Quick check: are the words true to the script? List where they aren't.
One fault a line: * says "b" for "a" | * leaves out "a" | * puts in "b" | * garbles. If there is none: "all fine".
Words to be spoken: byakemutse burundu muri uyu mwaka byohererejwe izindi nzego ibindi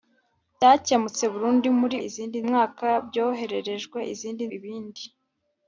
* says "izindi" for "uyu"
* leaves out "nzego"